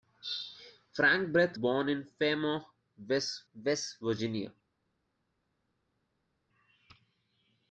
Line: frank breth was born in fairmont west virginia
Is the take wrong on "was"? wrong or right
wrong